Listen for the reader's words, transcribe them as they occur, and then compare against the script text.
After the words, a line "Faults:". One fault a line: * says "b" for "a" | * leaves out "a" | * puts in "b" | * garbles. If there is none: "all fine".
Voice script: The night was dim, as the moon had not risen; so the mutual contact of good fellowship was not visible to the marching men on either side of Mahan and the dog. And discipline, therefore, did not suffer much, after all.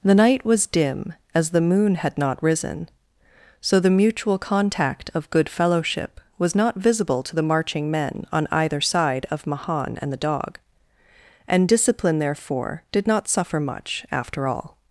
The night was dim, as the moon had not risen; so the mutual contact of good fellowship was not visible to the marching men on either side of Mahan and the dog. And discipline, therefore, did not suffer much, after all.
Faults:
all fine